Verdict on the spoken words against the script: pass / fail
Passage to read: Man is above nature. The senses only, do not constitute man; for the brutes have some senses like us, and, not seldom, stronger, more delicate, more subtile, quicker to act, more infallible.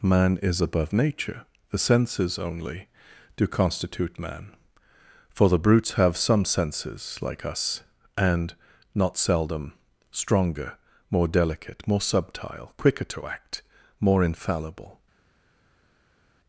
fail